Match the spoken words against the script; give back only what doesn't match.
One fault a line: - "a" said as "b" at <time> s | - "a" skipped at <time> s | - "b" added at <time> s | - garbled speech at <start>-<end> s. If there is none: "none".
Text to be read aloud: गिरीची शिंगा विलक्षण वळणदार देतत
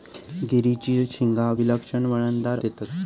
none